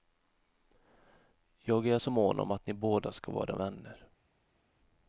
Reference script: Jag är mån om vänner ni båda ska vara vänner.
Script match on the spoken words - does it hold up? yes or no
no